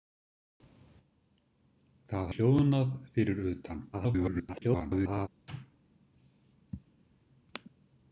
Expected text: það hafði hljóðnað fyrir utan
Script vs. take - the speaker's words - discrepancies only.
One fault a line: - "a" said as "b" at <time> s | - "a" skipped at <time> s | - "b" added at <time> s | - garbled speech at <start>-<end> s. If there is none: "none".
- "hafði" skipped at 2.3 s
- garbled speech at 3.9-5.3 s